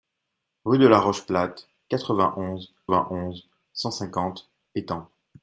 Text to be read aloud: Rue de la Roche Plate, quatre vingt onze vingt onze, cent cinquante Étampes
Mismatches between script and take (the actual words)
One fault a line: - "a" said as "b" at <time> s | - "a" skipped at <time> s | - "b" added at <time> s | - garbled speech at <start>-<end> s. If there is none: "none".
none